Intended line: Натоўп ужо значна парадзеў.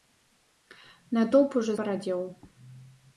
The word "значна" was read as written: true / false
false